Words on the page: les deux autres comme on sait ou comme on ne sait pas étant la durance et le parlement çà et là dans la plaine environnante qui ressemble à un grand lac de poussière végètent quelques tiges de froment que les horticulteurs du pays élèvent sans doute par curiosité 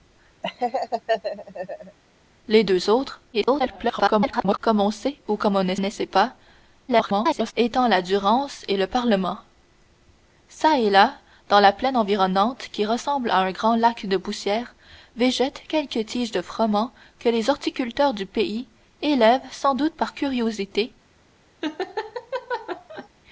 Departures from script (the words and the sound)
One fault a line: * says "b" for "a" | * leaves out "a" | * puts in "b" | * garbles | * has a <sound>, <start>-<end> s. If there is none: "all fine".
* has a laugh, 0.4-2.0 s
* garbles
* puts in "ne"
* garbles
* has a laugh, 21.6-23.1 s